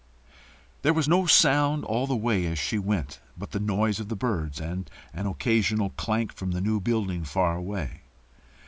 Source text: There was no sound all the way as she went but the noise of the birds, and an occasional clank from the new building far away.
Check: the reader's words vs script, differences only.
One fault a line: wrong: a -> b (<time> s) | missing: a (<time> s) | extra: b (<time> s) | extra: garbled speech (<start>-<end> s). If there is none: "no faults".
no faults